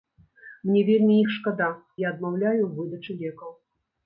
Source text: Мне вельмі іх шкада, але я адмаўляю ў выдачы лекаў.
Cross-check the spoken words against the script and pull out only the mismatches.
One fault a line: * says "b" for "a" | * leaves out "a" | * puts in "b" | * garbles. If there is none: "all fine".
* leaves out "але"